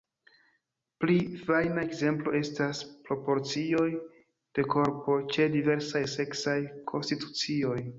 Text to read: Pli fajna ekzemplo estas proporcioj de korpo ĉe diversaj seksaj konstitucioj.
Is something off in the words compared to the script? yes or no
no